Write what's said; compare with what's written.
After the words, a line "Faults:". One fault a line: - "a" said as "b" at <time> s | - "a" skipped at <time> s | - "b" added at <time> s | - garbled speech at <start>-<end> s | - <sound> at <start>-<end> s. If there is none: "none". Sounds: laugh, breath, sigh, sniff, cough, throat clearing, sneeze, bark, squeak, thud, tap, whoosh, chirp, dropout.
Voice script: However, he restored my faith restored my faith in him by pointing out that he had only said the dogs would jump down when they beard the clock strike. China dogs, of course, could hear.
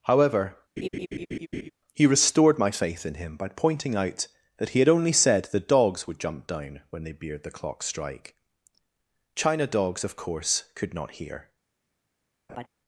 However, he restored my faith in him by pointing out that he had only said the dogs would jump down when they beard the clock strike. China dogs, of course, could not hear.
Faults:
- laugh at 0.8-1.7 s
- "restored my faith" skipped at 3.1 s
- "not" added at 10.9 s
- laugh at 12.5-12.7 s